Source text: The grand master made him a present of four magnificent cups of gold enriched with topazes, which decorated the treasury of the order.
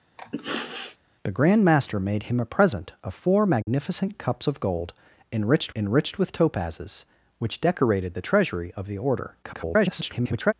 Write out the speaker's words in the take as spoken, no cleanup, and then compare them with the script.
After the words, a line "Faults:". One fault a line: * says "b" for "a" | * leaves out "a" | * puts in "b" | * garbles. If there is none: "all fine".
The grand master made him a present of four magnificent cups of gold enriched enriched with topazes, which decorated the treasury of the order. [garbled]
Faults:
* puts in "enriched"
* garbles